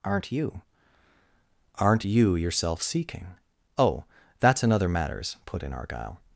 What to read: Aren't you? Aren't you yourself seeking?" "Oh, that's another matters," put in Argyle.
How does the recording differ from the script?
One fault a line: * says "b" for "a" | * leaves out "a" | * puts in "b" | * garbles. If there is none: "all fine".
all fine